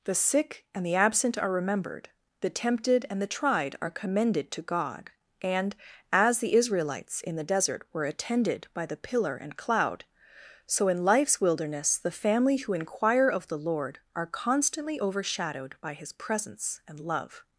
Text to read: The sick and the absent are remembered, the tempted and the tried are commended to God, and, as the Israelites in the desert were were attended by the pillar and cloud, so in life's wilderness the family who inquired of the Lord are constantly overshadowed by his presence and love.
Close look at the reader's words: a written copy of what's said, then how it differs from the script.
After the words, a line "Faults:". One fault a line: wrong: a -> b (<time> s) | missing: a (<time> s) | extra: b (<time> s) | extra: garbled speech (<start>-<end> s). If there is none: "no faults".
The sick and the absent are remembered, the tempted and the tried are commended to God, and, as the Israelites in the desert were attended by the pillar and cloud, so in life's wilderness the family who inquire of the Lord are constantly overshadowed by his presence and love.
Faults:
missing: were (8.1 s)
wrong: inquired -> inquire (12.7 s)